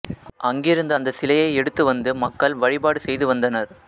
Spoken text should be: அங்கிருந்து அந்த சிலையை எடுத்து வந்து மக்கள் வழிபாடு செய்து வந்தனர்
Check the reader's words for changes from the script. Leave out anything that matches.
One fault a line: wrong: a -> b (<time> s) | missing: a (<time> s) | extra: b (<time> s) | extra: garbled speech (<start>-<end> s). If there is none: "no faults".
no faults